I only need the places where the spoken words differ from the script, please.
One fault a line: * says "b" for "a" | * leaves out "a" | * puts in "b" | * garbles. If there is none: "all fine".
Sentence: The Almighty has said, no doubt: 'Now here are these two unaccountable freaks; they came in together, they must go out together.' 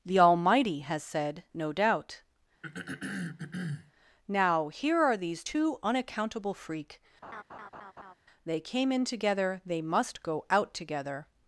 * says "freak" for "freaks"